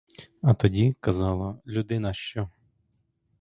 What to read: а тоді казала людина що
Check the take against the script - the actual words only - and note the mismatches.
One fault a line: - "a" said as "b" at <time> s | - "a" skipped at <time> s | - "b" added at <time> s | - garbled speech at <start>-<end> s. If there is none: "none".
none